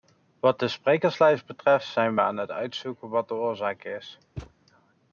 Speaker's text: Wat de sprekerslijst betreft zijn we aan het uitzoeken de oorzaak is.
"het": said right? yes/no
yes